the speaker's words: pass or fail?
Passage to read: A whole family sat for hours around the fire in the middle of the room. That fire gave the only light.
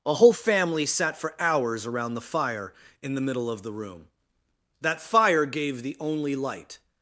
pass